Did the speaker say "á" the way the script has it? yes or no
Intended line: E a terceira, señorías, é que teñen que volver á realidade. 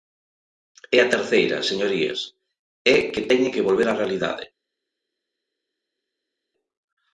yes